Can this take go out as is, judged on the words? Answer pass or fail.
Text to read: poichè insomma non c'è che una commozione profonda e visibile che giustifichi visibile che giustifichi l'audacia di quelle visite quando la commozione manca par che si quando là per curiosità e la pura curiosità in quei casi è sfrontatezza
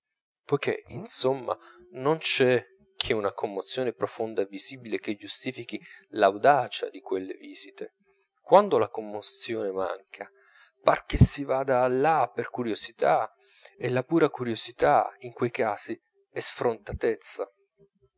fail